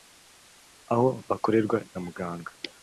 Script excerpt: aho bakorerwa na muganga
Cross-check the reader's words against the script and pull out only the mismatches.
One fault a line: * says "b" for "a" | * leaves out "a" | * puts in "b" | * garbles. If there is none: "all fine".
all fine